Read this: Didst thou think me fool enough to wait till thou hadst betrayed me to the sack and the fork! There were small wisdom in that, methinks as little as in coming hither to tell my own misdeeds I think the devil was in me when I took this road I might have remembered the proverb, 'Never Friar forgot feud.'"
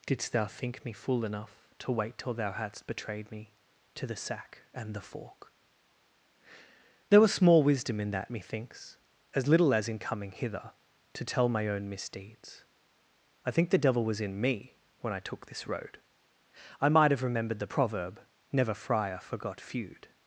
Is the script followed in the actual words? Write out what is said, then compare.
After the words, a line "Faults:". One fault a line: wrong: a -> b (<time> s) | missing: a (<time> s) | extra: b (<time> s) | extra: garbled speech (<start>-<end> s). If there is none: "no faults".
Didst thou think me fool enough to wait till thou hadst betrayed me to the sack and the fork! There was small wisdom in that, methinks as little as in coming hither to tell my own misdeeds I think the devil was in me when I took this road I might have remembered the proverb, 'Never Friar forgot feud.'"
Faults:
wrong: were -> was (7.2 s)